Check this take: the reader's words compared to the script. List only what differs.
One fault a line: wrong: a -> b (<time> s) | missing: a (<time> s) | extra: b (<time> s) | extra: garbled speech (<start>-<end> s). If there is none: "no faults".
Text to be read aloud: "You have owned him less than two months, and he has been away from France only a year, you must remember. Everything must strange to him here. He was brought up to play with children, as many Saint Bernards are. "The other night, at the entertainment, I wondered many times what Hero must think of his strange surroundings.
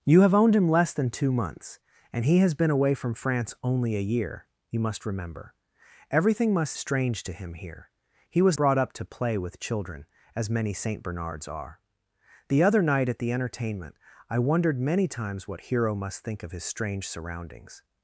no faults